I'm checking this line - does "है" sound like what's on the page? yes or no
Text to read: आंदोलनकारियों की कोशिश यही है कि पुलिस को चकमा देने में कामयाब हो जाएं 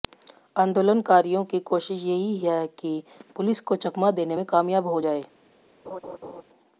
yes